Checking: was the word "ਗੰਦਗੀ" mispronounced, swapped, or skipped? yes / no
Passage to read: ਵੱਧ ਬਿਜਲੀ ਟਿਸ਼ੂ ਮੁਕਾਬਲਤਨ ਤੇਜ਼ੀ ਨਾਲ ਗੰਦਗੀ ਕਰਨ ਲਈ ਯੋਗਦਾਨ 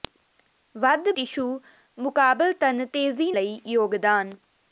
yes